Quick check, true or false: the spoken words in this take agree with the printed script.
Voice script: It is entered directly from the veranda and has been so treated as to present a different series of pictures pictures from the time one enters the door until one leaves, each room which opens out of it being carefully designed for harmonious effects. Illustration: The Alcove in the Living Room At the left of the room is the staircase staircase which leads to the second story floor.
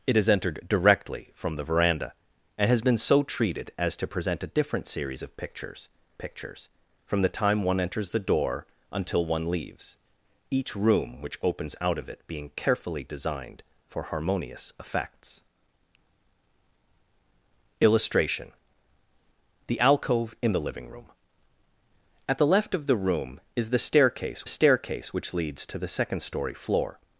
true